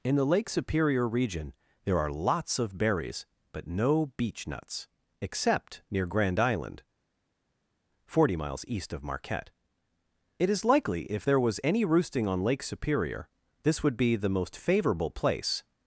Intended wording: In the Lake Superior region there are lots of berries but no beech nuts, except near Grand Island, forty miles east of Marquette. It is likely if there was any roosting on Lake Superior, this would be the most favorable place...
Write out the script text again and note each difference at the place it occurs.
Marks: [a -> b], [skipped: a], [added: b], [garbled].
In the Lake Superior region there are lots of berries but no beech nuts, except near Grand Island, forty miles east of Marquette. It is likely if there was any roosting on Lake Superior, this would be the most favorable place...